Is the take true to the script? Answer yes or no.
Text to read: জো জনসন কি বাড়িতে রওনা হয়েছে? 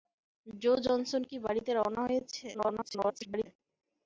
no